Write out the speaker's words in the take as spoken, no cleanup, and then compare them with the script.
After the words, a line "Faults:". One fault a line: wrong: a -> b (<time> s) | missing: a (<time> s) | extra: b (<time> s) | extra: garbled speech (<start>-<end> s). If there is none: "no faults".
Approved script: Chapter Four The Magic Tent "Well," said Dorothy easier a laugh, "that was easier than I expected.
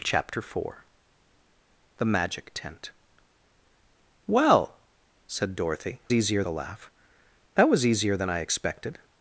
Chapter Four The Magic Tent "Well," said Dorothy easier a laugh, "that was easier than I expected.
Faults:
no faults